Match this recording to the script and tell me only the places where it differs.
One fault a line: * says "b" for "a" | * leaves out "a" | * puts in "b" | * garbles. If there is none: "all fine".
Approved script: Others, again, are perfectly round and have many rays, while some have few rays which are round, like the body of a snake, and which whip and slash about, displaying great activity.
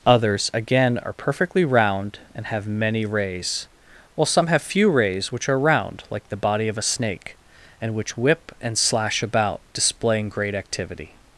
all fine